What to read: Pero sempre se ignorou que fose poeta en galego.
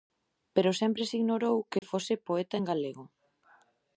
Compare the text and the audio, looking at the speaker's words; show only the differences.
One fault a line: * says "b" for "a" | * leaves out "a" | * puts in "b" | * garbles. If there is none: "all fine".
all fine